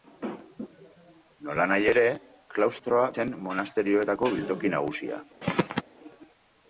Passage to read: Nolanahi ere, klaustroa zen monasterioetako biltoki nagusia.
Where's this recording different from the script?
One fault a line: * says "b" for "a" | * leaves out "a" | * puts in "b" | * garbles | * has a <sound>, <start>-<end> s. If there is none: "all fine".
* has a throat clearing, 5.4-5.8 s